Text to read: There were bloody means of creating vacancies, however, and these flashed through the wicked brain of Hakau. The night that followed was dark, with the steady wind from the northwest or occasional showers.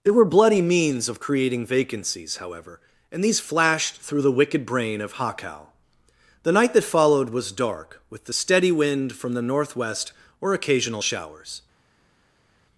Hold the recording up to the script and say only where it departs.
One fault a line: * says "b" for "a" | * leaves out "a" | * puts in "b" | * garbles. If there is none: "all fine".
all fine